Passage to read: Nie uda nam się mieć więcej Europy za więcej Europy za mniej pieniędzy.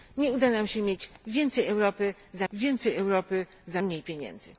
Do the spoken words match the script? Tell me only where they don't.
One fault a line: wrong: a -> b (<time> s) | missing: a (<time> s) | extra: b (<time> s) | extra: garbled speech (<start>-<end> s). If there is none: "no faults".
no faults